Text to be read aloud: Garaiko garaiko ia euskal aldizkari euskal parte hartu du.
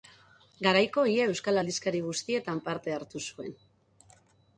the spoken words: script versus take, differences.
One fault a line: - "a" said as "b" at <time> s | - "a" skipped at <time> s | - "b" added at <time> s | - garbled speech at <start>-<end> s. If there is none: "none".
- "garaiko" skipped at 1.0 s
- "euskal" said as "guztietan" at 2.0 s
- "du" said as "zuen" at 3.3 s